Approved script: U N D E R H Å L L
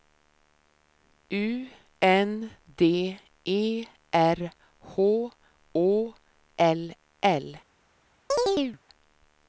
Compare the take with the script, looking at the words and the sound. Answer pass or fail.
fail